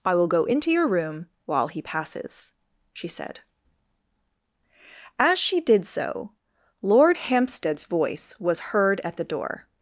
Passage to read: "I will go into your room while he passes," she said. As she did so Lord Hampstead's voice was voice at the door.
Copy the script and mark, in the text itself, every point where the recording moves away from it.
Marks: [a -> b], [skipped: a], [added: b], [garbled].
"I will go into your room while he passes," she said. As she did so Lord Hampstead's voice was [voice -> heard] at the door.